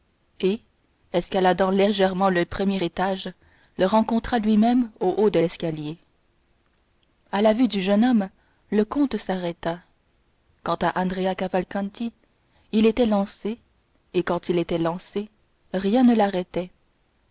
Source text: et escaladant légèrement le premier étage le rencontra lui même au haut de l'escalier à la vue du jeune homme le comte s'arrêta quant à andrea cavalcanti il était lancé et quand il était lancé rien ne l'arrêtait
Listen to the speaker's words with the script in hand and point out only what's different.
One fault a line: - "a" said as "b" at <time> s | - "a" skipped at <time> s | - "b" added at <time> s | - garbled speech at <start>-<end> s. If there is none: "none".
none